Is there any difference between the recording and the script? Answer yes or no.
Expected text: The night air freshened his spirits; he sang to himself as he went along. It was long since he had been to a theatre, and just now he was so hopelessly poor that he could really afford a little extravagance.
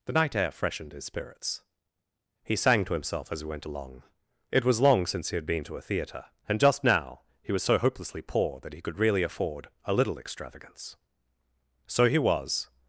yes